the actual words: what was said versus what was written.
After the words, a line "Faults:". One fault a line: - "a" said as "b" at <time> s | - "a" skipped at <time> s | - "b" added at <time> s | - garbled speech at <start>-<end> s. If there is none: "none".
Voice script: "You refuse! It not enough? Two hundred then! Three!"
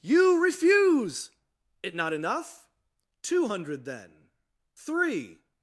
"You refuse! It not enough? Two hundred then! Three!"
Faults:
none